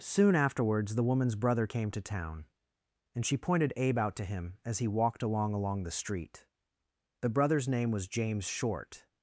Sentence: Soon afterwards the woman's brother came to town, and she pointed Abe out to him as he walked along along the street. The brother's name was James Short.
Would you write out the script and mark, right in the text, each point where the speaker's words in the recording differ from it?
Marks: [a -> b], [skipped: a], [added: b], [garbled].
Soon afterwards the woman's brother came to town, and she pointed Abe out to him as he walked along along the street. The brother's name was James Short.